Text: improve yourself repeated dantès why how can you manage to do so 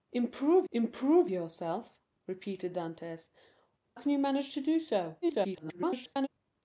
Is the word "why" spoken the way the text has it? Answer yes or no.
no